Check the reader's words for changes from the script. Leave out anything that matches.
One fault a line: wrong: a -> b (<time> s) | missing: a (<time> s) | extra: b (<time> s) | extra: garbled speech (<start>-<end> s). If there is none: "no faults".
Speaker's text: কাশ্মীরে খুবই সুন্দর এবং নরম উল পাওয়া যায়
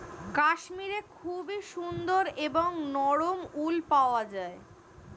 no faults